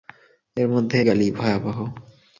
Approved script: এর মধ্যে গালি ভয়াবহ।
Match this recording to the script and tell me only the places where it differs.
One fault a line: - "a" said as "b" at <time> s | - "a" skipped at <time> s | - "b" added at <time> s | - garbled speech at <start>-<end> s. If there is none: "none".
none